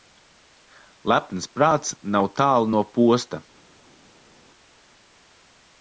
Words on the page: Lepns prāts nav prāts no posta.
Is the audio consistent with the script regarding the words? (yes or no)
no